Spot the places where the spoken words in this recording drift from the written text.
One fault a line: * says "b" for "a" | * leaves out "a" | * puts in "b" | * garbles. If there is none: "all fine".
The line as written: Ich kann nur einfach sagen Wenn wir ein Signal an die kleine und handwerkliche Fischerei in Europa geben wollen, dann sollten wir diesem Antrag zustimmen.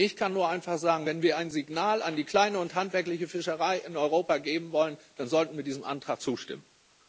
all fine